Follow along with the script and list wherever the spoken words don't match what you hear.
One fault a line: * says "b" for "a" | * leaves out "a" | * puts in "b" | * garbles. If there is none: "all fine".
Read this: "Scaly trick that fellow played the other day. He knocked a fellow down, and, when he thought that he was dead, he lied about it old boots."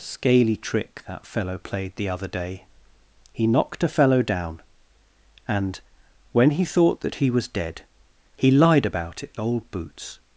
all fine